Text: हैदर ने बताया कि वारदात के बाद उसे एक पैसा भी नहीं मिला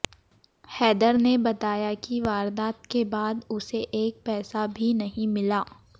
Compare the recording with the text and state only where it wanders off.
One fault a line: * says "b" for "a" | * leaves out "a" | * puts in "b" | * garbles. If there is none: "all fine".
all fine